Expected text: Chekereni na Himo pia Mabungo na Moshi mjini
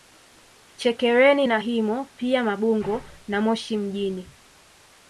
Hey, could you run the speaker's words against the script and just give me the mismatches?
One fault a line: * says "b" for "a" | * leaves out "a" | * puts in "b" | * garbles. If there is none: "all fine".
all fine